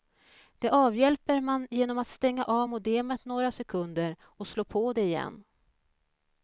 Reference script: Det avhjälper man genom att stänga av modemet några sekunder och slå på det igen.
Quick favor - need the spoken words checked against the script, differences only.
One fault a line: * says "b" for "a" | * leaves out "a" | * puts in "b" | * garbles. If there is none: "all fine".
all fine